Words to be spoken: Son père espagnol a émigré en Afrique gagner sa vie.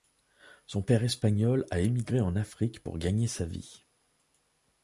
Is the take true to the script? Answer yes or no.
no